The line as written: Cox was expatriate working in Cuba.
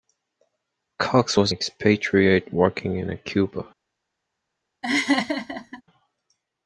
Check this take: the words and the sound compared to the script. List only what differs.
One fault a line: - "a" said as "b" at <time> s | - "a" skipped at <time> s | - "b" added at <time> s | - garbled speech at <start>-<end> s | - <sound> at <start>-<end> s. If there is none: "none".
- laugh at 4.8-5.8 s